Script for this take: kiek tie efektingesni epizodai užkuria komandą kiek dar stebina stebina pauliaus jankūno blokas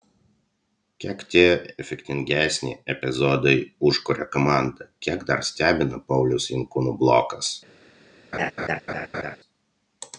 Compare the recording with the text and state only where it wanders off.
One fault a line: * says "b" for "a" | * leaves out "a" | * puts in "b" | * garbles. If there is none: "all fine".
* leaves out "stebina"